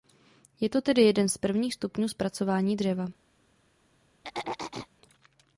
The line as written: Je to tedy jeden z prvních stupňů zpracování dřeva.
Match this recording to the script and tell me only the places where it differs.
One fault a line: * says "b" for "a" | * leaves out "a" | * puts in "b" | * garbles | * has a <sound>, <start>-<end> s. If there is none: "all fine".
* has a throat clearing, 4.2-4.9 s